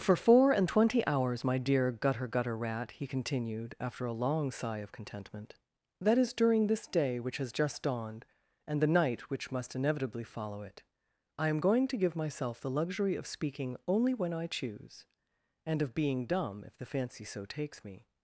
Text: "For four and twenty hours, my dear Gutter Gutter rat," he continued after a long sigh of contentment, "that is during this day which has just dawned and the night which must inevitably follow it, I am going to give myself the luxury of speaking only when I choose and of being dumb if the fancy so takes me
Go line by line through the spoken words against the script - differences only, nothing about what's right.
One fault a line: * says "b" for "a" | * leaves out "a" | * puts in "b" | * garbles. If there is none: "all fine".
all fine